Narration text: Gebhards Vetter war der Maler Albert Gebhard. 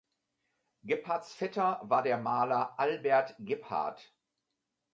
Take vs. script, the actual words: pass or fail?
pass